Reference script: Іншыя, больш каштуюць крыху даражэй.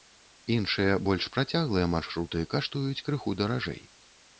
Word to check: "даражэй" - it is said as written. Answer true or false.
true